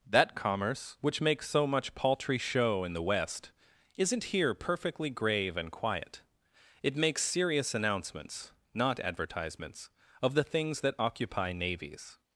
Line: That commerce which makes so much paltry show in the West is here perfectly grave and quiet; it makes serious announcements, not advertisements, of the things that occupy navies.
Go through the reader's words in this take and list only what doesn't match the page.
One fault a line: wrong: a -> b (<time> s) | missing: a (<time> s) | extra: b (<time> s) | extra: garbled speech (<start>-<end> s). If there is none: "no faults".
wrong: is -> isn't (4.0 s)